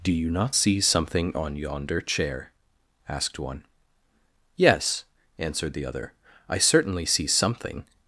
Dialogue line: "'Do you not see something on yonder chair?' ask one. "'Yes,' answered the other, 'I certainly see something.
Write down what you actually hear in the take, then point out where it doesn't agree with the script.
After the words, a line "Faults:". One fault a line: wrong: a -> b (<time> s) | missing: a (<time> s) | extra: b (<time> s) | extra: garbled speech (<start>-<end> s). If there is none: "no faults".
"'Do you not see something on yonder chair?' asked one. "'Yes,' answered the other, 'I certainly see something.
Faults:
wrong: ask -> asked (3.1 s)